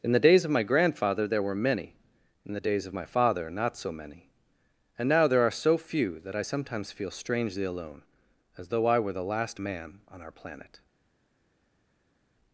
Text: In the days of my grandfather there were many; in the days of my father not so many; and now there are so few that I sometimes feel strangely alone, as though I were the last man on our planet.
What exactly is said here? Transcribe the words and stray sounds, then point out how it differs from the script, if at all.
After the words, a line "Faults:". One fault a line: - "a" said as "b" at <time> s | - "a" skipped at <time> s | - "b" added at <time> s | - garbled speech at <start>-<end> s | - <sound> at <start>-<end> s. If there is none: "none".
In the days of my grandfather there were many; in the days of my father not so many; and now there are so few that I sometimes feel strangely alone, as though I were the last man on our planet.
Faults:
none